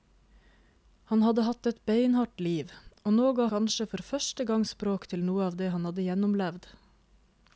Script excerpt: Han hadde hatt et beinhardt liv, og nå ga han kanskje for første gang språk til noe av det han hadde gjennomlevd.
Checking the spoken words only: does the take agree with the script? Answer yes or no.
no